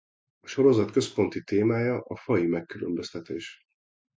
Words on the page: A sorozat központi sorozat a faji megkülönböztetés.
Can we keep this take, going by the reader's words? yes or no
no